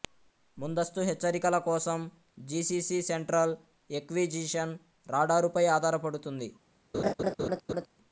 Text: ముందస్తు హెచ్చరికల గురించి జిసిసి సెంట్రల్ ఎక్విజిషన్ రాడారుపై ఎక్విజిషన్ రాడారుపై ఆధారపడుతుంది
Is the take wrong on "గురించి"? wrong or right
wrong